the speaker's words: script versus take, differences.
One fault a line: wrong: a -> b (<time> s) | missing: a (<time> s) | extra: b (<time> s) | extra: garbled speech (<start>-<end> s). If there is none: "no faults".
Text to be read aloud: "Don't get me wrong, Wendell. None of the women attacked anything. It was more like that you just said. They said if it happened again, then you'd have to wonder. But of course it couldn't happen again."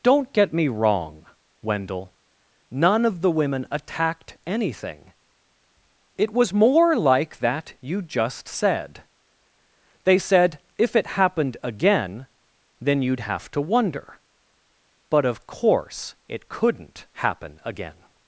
no faults